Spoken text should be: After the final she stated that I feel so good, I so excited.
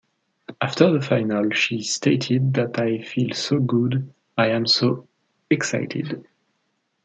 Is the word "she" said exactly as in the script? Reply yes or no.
yes